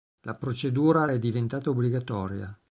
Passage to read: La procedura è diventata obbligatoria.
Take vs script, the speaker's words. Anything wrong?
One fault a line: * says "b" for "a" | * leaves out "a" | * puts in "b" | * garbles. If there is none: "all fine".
all fine